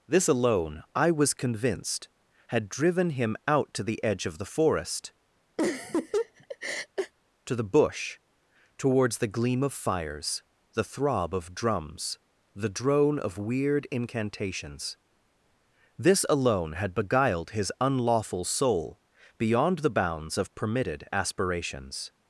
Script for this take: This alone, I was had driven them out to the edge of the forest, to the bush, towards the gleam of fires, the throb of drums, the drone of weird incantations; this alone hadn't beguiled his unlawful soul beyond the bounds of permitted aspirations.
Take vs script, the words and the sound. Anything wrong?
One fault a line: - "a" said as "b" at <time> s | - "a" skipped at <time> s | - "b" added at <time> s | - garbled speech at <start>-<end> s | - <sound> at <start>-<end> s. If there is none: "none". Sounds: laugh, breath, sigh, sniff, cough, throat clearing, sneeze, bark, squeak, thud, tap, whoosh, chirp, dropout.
- "convinced" added at 1.3 s
- "them" said as "him" at 3.1 s
- laugh at 5.6-7.1 s
- "hadn't" said as "had" at 16.7 s